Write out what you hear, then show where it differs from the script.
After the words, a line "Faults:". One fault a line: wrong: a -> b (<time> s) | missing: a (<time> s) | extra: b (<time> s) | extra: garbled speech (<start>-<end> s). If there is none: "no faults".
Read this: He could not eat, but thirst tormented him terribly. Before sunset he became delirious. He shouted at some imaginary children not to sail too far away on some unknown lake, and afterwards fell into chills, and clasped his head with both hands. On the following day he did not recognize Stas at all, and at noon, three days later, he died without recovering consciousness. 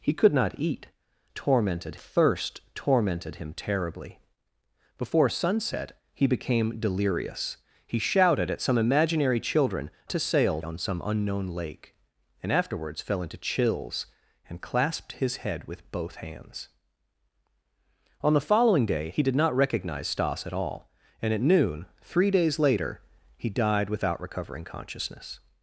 He could not eat, tormented thirst tormented him terribly. Before sunset he became delirious. He shouted at some imaginary children to sail on some unknown lake, and afterwards fell into chills, and clasped his head with both hands. On the following day he did not recognize Stas at all, and at noon, three days later, he died without recovering consciousness.
Faults:
wrong: but -> tormented (1.3 s)
missing: not (9.9 s)
missing: too far away (10.6 s)